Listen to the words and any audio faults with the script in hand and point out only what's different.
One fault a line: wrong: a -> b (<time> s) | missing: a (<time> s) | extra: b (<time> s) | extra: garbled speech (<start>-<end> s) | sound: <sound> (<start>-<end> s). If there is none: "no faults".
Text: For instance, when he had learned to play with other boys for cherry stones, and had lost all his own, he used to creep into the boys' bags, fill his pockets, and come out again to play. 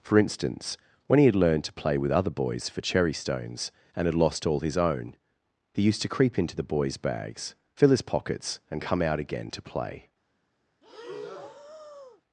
sound: breath (10.8-12.2 s)